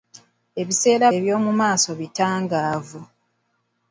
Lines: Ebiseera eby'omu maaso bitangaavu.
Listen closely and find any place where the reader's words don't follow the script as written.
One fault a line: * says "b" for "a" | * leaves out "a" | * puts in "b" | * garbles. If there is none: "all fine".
all fine